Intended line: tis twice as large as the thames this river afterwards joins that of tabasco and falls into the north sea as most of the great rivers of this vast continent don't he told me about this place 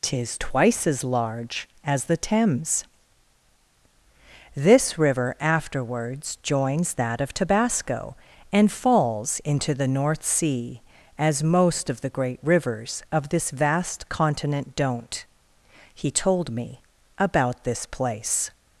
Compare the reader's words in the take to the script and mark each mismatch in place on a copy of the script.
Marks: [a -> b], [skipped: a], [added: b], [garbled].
tis twice as large as the thames this river afterwards joins that of tabasco and falls into the north sea as most of the great rivers of this vast continent don't he told me about this place